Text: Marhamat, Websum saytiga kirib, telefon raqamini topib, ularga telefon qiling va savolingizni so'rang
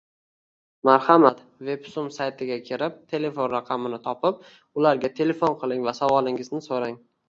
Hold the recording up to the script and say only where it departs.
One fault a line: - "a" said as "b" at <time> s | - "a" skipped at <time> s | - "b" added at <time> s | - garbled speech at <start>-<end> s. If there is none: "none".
none